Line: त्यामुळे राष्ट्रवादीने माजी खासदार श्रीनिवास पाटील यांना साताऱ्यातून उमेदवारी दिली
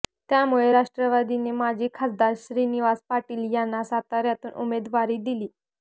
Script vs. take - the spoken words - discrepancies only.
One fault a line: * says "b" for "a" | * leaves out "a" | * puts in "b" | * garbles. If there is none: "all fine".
all fine